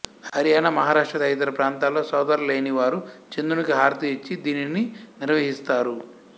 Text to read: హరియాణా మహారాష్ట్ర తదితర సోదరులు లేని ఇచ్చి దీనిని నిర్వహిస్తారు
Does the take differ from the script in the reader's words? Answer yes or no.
yes